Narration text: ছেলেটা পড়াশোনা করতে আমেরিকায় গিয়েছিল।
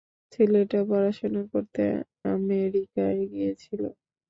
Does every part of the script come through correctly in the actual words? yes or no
yes